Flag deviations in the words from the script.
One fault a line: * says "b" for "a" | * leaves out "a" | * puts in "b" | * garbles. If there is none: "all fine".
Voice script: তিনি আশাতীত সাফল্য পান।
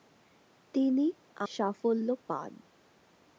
* leaves out "আশাতীত"